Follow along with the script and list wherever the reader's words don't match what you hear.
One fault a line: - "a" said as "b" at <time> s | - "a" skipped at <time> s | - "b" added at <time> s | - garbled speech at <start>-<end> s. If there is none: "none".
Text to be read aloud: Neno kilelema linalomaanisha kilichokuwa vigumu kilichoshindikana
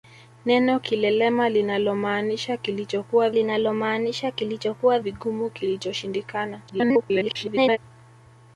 - "linalomaanisha kilichokuwa" added at 3.3 s
- garbled speech at 6.7-7.8 s